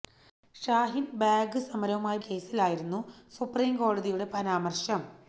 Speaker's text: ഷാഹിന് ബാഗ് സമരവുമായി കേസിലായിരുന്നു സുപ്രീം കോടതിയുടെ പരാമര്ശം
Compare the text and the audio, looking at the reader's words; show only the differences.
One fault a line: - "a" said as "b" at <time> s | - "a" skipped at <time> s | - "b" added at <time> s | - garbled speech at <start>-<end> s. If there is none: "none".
none